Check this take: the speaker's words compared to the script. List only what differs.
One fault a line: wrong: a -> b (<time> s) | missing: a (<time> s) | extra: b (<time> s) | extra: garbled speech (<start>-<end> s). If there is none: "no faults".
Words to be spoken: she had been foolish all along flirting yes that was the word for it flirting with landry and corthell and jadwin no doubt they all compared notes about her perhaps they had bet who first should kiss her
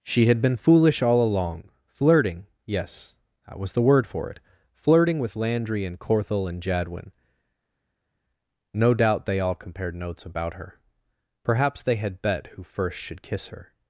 no faults